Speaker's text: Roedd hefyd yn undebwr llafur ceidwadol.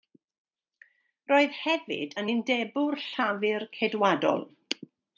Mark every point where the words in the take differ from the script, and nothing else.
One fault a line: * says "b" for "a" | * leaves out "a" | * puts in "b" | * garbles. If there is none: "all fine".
all fine